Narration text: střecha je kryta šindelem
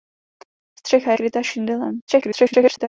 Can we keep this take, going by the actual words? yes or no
no